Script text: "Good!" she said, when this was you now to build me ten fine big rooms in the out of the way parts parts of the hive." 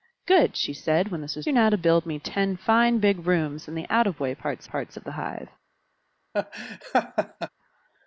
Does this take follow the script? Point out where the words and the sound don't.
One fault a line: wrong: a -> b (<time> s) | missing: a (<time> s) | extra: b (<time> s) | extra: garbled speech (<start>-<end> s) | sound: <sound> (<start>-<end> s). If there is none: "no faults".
sound: laugh (6.3-7.5 s)